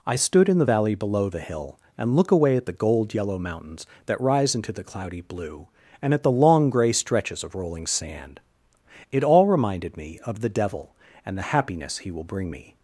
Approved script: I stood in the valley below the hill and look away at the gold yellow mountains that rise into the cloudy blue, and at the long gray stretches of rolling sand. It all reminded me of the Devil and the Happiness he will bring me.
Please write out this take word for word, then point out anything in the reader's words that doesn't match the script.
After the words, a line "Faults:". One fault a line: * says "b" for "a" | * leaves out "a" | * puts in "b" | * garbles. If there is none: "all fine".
I stood in the valley below the hill and look away at the gold yellow mountains that rise into the cloudy blue, and at the long gray stretches of rolling sand. It all reminded me of the Devil and the Happiness he will bring me.
Faults:
all fine